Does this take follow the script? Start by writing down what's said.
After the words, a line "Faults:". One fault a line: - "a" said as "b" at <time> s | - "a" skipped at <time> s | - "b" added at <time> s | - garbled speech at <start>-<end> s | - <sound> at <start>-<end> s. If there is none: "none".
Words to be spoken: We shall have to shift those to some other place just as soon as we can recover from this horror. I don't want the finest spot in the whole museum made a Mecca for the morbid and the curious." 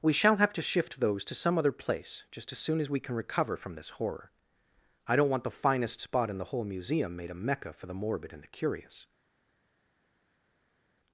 We shall have to shift those to some other place just as soon as we can recover from this horror. I don't want the finest spot in the whole museum made a Mecca for the morbid and the curious."
Faults:
none